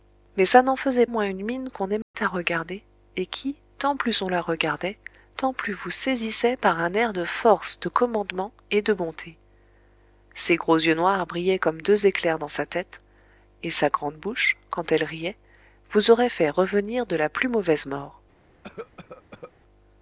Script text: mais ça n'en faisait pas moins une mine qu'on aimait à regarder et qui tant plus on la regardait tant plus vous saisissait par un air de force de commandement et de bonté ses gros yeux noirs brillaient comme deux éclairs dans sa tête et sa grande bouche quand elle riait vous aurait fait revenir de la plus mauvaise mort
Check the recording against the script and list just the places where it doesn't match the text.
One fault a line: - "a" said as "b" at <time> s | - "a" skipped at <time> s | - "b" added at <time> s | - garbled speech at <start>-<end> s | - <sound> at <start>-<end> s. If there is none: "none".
- "pas" skipped at 1.1 s
- dropout at 2.0-2.1 s
- cough at 18.6-19.5 s